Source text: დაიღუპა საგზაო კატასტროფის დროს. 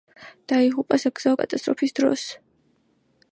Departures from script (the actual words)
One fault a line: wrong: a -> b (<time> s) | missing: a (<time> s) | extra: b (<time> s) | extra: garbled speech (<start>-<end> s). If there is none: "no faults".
no faults